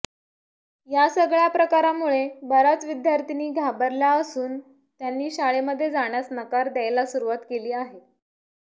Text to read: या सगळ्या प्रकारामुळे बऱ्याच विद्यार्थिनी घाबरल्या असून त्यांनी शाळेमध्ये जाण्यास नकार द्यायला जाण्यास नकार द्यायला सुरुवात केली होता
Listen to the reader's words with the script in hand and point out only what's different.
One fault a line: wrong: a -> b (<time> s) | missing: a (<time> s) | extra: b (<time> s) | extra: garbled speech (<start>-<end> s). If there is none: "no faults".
missing: जाण्यास नकार द्यायला (7.1 s)
wrong: होता -> आहे (7.7 s)